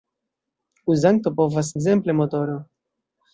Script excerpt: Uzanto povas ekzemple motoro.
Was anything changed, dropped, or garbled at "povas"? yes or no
no